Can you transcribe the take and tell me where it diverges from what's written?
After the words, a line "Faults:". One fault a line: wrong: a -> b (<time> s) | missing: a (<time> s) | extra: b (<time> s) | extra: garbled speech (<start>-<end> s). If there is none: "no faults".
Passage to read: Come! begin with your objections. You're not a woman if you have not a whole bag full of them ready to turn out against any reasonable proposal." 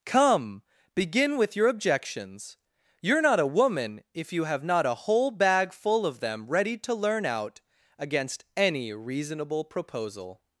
Come! begin with your objections. You're not a woman if you have not a whole bag full of them ready to learn out against any reasonable proposal."
Faults:
wrong: turn -> learn (6.9 s)